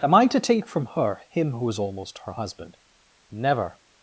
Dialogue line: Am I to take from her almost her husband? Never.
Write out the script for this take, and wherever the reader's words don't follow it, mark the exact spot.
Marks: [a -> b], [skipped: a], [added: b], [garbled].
Am I to take from her [added: him who is] almost her husband? Never.